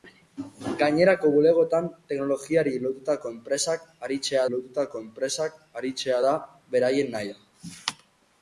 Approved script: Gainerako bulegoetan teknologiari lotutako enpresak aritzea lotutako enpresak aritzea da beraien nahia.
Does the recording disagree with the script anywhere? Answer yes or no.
no